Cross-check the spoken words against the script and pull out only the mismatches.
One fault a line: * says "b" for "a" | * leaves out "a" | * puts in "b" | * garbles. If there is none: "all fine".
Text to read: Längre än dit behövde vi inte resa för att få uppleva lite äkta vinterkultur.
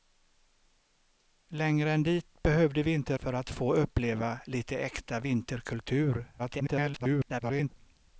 * leaves out "resa"
* garbles